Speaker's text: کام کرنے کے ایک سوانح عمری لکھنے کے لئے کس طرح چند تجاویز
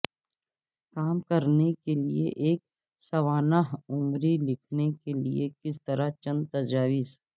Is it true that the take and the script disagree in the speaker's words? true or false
true